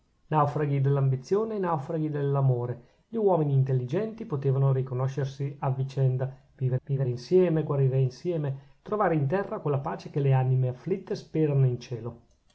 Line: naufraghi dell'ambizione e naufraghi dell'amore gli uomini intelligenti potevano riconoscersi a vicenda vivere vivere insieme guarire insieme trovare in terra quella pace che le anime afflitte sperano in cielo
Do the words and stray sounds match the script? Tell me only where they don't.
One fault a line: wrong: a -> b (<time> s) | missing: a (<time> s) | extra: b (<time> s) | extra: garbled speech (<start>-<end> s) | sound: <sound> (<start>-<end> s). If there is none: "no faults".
no faults